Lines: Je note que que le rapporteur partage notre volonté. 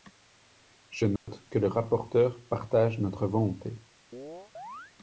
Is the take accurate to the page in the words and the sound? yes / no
no